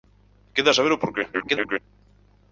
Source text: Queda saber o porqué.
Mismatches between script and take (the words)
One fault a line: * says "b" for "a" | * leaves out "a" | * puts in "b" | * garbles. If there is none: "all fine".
* garbles